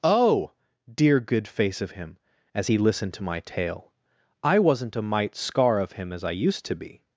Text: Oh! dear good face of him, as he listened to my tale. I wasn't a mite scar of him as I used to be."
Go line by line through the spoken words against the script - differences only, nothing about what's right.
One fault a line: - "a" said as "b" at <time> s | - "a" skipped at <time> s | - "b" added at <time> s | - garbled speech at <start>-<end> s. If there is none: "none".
none